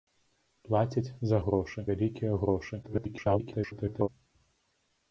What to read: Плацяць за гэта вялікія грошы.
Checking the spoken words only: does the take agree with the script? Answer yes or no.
no